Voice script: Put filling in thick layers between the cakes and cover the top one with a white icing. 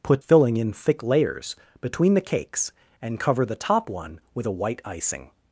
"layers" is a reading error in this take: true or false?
false